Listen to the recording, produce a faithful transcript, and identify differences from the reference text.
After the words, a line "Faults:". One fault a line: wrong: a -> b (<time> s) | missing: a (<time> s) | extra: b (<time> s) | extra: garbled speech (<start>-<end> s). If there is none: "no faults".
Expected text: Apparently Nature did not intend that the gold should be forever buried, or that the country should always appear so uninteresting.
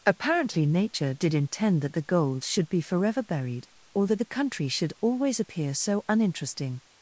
Apparently Nature did intend that the gold should be forever buried, or that the country should always appear so uninteresting.
Faults:
missing: not (1.4 s)